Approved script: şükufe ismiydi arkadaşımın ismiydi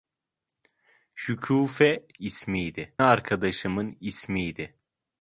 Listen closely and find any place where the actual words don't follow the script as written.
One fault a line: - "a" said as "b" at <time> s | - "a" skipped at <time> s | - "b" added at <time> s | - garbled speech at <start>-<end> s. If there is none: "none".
none